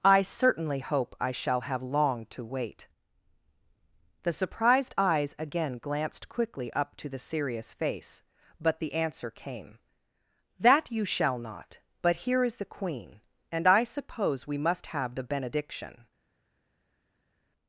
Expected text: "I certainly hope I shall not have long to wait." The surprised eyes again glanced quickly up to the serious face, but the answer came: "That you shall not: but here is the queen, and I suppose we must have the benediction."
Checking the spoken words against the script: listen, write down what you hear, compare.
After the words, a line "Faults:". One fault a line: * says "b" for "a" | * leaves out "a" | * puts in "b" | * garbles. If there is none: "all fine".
"I certainly hope I shall have long to wait." The surprised eyes again glanced quickly up to the serious face, but the answer came: "That you shall not: but here is the queen, and I suppose we must have the benediction."
Faults:
* leaves out "not"